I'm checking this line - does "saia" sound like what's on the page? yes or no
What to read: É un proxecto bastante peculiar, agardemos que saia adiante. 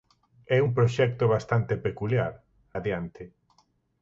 no